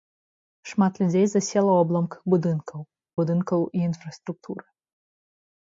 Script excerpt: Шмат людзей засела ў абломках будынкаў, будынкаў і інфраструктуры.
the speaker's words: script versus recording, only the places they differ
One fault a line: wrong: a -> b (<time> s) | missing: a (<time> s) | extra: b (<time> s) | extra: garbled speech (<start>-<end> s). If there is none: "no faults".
no faults